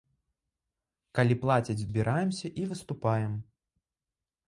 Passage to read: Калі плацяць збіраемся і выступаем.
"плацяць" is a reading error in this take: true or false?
false